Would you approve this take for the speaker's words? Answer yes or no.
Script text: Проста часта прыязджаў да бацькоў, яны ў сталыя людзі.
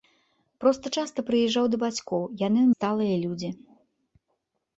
yes